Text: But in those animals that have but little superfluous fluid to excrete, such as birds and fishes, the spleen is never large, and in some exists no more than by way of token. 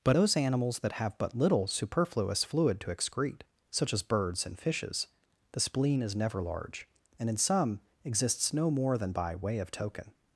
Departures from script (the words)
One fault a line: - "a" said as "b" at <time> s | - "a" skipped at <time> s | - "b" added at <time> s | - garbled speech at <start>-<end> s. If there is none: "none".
- "in" skipped at 0.2 s